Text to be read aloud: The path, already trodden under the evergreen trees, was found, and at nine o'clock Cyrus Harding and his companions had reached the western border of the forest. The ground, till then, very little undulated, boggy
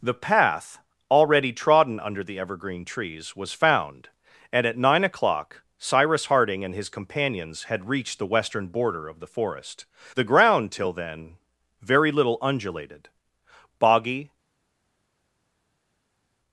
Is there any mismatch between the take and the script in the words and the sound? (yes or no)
no